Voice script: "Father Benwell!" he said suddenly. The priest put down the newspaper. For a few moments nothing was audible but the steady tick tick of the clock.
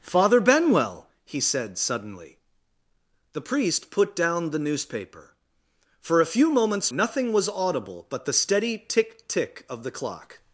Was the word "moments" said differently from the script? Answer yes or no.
no